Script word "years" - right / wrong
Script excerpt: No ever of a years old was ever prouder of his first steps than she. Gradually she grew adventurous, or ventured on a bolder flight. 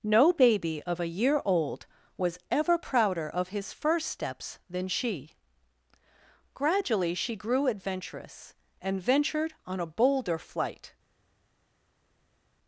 wrong